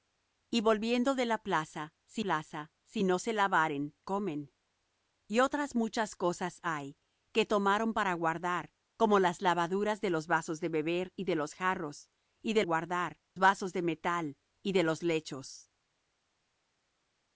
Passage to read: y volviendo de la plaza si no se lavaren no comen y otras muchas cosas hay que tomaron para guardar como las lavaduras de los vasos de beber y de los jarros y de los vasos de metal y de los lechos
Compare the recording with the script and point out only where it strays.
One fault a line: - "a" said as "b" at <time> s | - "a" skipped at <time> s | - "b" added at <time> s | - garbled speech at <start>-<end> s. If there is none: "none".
- "plaza si" added at 2.2 s
- "no" skipped at 4.0 s
- "los" said as "guardar" at 12.6 s